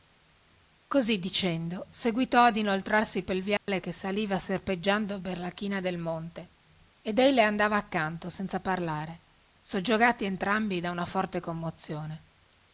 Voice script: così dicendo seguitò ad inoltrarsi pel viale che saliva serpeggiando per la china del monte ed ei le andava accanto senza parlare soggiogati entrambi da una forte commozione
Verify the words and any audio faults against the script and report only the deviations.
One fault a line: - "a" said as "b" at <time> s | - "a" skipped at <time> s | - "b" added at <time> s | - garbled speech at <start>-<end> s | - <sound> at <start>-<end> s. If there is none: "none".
- dropout at 3.6-3.7 s